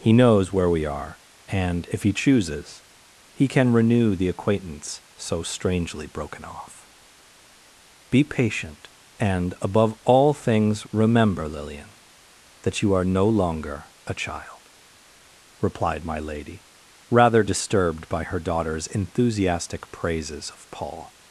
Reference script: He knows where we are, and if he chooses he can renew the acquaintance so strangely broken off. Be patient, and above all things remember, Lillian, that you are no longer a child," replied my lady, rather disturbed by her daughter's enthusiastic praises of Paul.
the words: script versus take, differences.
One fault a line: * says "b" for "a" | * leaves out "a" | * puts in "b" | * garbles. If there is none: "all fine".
all fine